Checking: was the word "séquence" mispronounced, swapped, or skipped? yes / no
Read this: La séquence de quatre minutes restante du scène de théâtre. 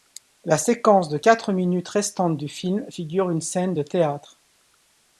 no